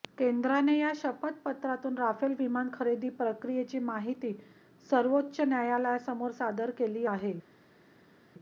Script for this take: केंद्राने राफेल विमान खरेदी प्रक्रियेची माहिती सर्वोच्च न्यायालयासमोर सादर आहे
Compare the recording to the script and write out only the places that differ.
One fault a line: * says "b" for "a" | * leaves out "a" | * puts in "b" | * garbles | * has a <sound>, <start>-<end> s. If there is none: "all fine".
* puts in "या शपथपत्रातून"
* puts in "केली"